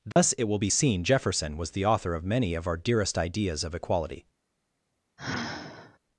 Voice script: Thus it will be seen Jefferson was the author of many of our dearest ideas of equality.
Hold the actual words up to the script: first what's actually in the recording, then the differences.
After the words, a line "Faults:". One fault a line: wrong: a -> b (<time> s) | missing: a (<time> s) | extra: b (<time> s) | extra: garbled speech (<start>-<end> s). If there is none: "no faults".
Thus it will be seen Jefferson was the author of many of our dearest ideas of equality.
Faults:
no faults